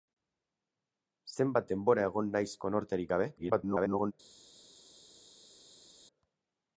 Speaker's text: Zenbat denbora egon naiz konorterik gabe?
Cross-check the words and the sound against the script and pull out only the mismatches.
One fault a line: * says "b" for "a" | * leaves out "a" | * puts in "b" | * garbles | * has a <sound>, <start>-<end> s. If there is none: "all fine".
* garbles